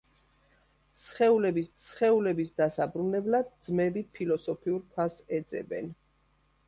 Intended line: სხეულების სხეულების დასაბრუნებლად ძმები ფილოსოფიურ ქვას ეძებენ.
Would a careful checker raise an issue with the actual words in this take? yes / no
no